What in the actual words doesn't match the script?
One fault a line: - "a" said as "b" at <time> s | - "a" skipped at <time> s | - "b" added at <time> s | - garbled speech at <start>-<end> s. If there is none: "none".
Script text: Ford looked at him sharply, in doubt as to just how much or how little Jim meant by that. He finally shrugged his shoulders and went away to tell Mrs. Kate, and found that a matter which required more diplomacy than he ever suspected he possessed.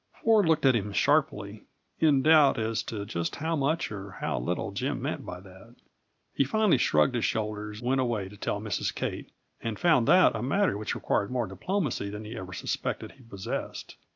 - "and" skipped at 7.8 s